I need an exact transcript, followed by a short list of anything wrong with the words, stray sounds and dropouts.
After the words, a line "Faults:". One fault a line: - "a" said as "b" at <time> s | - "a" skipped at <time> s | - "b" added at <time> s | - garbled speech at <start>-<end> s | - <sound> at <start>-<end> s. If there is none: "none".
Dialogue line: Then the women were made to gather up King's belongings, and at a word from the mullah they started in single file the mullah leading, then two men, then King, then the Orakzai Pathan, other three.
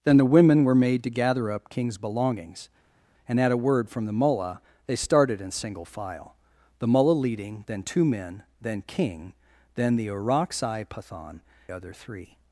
Then the women were made to gather up King's belongings, and at a word from the mullah they started in single file the mullah leading, then two men, then King, then the Orakzai Pathan, other three.
Faults:
none